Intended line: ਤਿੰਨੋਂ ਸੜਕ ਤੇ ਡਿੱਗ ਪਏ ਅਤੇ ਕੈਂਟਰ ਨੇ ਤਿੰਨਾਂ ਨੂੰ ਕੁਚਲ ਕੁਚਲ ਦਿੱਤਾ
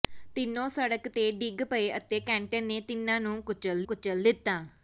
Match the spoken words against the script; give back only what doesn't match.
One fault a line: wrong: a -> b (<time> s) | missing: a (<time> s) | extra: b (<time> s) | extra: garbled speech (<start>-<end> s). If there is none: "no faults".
no faults